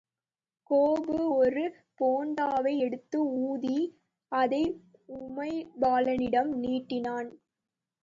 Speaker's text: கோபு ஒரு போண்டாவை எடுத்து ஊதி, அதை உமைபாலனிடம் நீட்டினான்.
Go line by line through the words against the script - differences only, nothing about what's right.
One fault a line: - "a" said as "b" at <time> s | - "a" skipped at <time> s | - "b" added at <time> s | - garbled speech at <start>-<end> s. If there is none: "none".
none